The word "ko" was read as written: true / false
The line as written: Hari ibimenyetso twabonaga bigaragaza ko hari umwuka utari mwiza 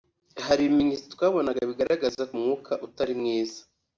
false